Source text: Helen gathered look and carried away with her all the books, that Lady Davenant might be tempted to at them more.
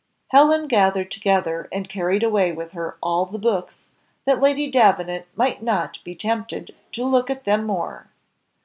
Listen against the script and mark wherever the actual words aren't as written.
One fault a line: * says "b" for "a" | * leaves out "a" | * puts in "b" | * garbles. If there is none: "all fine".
* says "together" for "look"
* puts in "not"
* puts in "look"